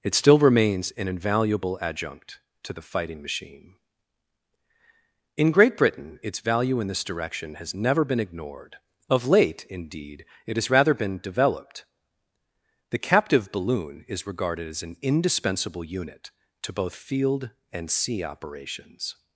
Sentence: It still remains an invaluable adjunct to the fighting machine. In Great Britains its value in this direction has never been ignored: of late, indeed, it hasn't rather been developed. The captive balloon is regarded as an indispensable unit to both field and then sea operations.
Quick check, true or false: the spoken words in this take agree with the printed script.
false